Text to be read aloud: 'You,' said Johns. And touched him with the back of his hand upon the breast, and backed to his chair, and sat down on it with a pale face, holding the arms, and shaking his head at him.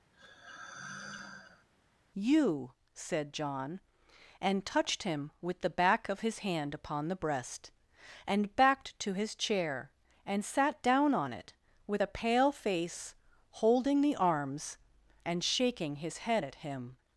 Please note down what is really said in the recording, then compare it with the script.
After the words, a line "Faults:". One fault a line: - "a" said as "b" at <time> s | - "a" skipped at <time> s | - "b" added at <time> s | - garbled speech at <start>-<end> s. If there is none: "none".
'You,' said John. And touched him with the back of his hand upon the breast, and backed to his chair, and sat down on it with a pale face, holding the arms, and shaking his head at him.
Faults:
- "Johns" said as "John" at 3.3 s